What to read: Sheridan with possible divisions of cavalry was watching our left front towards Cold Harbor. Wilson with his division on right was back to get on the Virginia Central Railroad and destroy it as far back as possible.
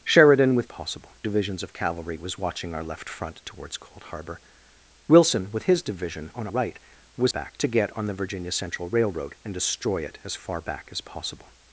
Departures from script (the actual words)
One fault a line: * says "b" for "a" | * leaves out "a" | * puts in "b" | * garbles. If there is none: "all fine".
all fine